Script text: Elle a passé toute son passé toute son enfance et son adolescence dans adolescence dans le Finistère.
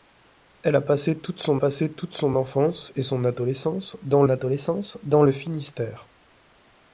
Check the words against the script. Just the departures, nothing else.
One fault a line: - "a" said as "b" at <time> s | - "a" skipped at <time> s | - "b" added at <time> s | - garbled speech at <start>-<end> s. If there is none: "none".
none